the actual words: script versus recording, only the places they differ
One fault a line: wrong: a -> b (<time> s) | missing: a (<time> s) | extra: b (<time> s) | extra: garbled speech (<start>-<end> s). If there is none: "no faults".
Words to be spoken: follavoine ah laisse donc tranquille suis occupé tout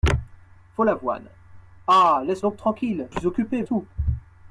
no faults